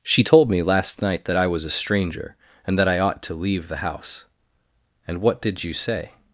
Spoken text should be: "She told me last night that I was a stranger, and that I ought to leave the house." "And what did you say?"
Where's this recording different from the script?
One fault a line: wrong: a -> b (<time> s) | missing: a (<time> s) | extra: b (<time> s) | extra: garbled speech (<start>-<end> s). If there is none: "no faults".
no faults